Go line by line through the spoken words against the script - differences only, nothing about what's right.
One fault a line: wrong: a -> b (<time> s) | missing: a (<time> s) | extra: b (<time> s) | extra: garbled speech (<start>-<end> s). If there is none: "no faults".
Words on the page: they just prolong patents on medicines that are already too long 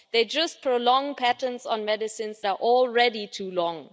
missing: that (2.4 s)